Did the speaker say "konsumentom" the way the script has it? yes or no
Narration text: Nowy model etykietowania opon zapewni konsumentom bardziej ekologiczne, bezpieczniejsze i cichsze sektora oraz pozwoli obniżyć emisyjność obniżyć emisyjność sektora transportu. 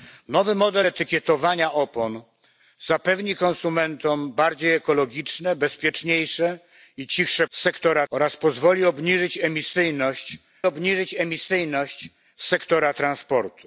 yes